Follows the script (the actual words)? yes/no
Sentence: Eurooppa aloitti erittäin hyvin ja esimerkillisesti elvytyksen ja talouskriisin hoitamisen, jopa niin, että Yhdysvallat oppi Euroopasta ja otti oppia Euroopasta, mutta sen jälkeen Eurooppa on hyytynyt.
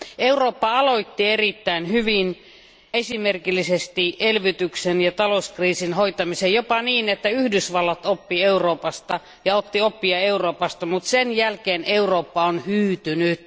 no